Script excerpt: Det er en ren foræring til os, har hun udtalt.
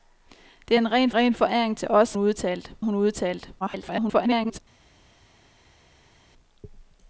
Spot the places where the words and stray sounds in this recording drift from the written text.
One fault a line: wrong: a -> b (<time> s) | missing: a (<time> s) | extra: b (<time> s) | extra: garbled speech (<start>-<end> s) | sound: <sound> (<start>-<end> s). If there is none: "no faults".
extra: ren (1.1 s)
wrong: har -> udtalt (2.2 s)
extra: garbled speech (3.6-4.6 s)